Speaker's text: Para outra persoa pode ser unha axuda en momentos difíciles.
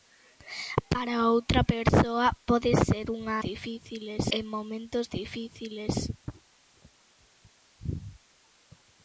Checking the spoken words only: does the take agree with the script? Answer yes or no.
no